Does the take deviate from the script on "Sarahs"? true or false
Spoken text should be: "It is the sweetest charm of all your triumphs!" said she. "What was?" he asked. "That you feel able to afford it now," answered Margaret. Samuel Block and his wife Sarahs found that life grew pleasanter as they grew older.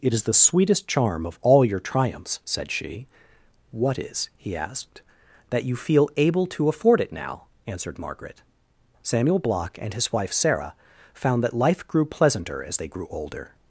true